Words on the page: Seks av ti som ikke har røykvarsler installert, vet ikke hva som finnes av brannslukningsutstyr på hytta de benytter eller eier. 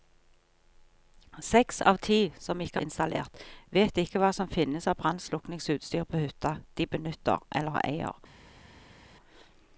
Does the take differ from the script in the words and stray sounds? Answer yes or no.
yes